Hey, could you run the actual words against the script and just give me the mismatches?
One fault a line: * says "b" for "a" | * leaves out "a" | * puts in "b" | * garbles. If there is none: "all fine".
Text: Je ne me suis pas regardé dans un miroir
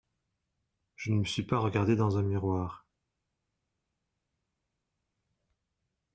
all fine